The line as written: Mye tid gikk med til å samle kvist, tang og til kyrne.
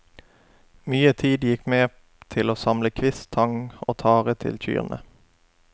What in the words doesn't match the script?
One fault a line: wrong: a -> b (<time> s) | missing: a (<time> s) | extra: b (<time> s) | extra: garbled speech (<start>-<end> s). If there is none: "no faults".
extra: tare (4.0 s)